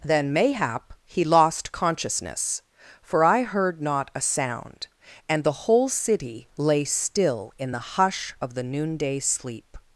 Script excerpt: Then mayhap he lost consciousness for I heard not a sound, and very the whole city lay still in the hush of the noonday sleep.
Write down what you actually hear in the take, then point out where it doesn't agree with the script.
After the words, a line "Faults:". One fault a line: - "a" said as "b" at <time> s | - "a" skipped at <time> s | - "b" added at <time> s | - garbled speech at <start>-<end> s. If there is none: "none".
Then mayhap he lost consciousness for I heard not a sound, and the whole city lay still in the hush of the noonday sleep.
Faults:
- "very" skipped at 5.4 s